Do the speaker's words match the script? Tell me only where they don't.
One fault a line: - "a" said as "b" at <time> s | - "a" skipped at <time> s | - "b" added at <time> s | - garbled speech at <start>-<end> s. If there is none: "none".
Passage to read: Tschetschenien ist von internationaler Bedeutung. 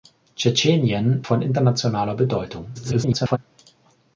- "ist" skipped at 1.3 s
- garbled speech at 2.7-3.4 s